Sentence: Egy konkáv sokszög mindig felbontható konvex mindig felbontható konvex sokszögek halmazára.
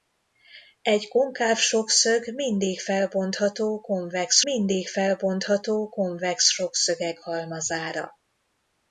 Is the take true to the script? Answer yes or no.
yes